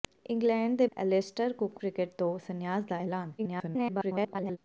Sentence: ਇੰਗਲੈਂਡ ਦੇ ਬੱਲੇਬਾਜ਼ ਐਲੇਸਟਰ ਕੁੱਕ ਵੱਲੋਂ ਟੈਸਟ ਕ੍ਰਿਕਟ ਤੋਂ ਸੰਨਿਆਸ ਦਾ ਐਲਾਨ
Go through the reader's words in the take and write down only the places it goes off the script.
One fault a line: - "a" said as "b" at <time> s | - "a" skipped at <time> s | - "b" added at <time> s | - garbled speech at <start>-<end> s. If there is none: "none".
- "ਬੱਲੇਬਾਜ਼" skipped at 0.8 s
- "ਵੱਲੋਂ ਟੈਸਟ" skipped at 1.8 s
- garbled speech at 3.4-4.6 s